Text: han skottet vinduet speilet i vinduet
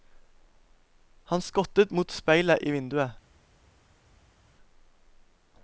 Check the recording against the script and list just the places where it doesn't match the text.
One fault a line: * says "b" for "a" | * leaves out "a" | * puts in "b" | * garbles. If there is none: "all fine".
* says "mot" for "vinduet"